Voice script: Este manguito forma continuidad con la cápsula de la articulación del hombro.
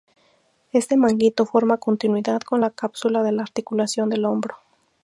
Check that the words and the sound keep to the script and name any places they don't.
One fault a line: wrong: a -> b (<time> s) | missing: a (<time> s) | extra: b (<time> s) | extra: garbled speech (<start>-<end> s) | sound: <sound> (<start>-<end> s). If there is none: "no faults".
no faults